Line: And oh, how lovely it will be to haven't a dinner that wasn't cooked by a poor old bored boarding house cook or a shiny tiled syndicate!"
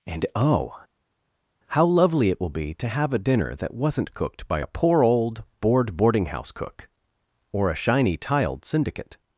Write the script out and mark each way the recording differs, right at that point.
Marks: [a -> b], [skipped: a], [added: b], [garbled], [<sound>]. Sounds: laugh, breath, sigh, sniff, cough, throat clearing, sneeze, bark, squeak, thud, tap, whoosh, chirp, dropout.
And oh, how lovely it will be to [haven't -> have] a dinner that wasn't cooked by a poor old bored boarding house cook or a shiny tiled syndicate!"